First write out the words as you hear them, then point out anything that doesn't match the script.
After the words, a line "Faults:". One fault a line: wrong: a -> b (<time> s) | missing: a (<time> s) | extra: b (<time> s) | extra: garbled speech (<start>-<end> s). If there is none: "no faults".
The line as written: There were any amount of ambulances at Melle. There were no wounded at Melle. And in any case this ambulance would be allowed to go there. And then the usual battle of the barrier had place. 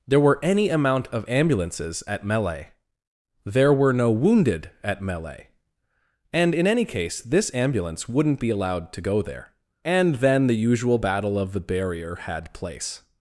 There were any amount of ambulances at Melle. There were no wounded at Melle. And in any case this ambulance wouldn't be allowed to go there. And then the usual battle of the barrier had place.
Faults:
wrong: would -> wouldn't (8.1 s)